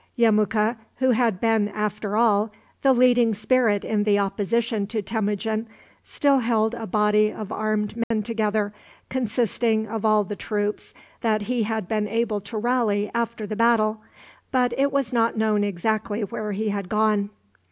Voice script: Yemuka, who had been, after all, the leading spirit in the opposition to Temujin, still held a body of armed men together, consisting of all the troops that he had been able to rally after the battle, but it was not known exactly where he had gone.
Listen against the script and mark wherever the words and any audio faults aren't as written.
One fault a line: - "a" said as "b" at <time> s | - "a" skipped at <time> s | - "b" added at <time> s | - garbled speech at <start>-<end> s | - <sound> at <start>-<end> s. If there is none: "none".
- dropout at 8.0-8.1 s